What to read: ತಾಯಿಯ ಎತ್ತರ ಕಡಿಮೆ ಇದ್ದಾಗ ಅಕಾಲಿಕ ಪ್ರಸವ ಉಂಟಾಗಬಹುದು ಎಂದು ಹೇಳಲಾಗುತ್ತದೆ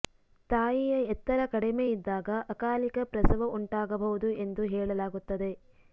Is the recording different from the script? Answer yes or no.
no